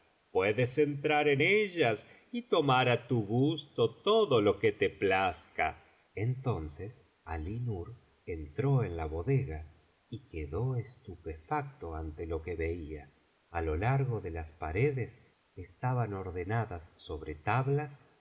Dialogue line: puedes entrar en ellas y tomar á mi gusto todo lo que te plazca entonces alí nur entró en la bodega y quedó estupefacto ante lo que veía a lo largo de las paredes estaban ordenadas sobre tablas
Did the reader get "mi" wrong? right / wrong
wrong